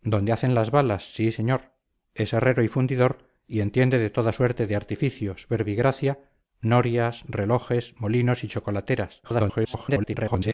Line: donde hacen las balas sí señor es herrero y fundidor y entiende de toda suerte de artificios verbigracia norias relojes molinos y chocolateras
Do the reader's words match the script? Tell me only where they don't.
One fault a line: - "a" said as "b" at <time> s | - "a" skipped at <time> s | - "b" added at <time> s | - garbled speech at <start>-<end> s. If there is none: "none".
- garbled speech at 9.2-10.5 s